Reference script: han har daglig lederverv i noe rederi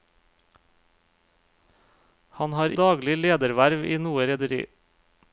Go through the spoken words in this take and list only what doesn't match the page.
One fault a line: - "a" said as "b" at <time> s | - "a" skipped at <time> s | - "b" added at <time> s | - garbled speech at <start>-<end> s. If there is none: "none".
none